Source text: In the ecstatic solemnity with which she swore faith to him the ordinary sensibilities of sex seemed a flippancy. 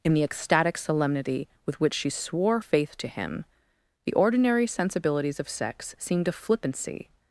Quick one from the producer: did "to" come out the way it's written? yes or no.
yes